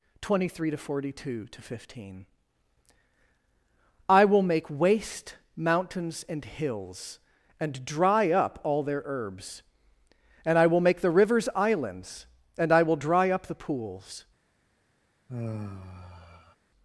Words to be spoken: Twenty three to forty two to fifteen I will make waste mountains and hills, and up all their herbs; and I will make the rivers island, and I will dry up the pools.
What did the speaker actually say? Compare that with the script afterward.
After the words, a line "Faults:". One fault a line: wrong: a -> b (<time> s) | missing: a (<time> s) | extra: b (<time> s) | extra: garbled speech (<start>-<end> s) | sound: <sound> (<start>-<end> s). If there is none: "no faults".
Twenty three to forty two to fifteen I will make waste mountains and hills, and dry up all their herbs; and I will make the rivers islands, and I will dry up the pools.
Faults:
extra: dry (7.8 s)
wrong: island -> islands (11.6 s)
sound: sigh (15.3-16.6 s)